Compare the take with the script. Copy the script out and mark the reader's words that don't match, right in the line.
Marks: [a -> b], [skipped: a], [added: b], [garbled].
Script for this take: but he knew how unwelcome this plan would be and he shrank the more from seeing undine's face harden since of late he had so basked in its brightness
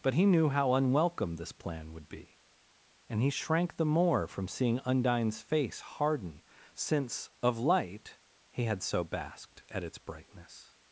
but he knew how unwelcome this plan would be and he shrank the more from seeing undine's face harden since of [late -> light] he had so basked [in -> at] its brightness